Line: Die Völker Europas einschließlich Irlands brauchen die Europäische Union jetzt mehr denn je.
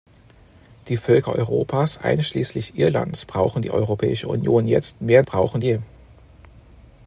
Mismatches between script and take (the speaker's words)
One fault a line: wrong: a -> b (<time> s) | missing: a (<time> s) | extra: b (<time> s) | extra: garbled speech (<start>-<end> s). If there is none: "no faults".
wrong: denn -> brauchen (5.2 s)